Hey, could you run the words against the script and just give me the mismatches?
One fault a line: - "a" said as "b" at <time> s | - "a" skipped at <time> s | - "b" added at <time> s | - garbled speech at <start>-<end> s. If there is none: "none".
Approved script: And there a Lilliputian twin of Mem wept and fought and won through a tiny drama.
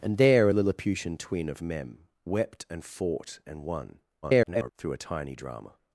- garbled speech at 4.2-4.7 s